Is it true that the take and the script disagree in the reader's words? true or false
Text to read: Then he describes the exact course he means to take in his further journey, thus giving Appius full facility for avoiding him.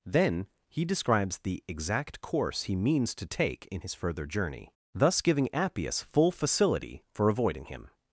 false